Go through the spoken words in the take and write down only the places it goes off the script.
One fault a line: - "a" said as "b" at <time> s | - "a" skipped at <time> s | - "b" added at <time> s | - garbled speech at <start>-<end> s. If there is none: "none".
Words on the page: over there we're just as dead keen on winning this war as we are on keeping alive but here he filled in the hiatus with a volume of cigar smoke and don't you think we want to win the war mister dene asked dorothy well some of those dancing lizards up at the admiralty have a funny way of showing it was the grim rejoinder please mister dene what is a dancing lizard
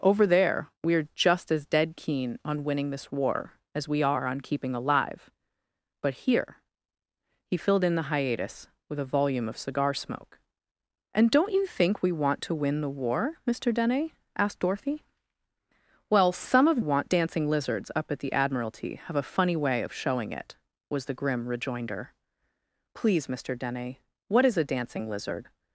- "those" said as "want" at 16.8 s